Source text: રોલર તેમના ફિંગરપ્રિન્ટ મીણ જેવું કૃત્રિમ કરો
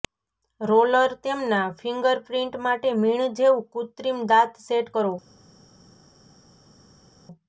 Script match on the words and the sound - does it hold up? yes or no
no